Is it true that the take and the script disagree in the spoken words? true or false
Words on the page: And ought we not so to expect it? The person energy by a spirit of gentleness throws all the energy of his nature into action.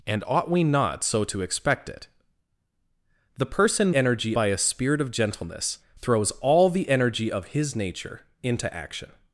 false